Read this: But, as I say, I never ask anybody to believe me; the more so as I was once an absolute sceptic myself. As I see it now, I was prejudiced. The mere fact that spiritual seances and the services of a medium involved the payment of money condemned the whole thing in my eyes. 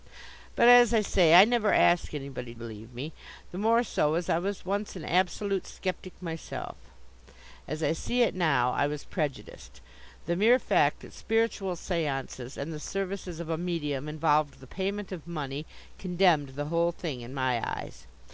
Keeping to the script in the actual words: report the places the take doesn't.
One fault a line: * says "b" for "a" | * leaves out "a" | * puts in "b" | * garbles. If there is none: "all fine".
* leaves out "to"